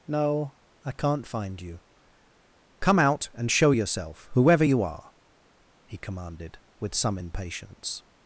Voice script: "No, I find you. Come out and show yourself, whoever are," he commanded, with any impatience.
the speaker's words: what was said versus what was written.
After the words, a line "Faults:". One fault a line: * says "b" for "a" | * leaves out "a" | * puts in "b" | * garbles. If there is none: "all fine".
"No, I can't find you. Come out and show yourself, whoever you are," he commanded, with some impatience.
Faults:
* puts in "can't"
* puts in "you"
* says "some" for "any"